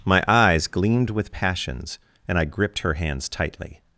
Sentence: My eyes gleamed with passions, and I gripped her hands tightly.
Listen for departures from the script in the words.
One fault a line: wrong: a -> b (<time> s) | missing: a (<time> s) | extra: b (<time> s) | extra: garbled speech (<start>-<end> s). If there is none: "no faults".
no faults